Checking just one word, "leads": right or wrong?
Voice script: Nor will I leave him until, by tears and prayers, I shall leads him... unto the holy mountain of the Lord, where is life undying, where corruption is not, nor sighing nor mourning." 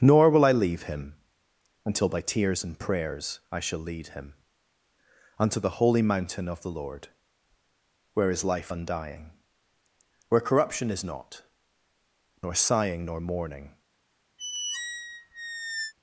wrong